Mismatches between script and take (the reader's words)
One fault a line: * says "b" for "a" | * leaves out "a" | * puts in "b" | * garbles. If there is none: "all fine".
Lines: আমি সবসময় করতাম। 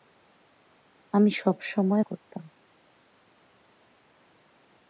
all fine